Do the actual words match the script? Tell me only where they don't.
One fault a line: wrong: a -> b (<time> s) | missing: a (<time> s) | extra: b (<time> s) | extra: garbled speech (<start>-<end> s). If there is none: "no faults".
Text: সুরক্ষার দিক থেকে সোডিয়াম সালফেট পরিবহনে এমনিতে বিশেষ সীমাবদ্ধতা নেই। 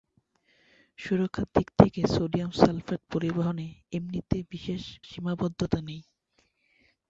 no faults